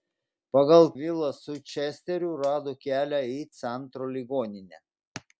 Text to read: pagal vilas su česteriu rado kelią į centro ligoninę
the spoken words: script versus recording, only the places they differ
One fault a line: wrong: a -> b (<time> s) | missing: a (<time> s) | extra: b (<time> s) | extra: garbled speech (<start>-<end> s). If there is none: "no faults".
no faults